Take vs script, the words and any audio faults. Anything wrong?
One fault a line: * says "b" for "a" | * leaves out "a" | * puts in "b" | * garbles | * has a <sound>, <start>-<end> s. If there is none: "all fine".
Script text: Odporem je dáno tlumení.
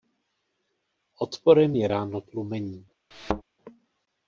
* has a thud, 3.1-3.4 s